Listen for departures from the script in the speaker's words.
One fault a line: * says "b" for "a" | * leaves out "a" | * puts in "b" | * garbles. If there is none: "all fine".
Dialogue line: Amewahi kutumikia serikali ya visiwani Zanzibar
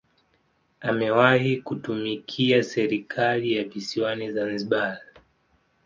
all fine